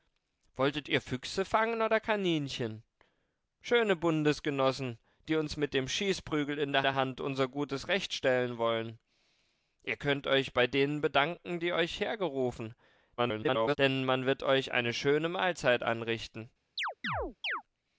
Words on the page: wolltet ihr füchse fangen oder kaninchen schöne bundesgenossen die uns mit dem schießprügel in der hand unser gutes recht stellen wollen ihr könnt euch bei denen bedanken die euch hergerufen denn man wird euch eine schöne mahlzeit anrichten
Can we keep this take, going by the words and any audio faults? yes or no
no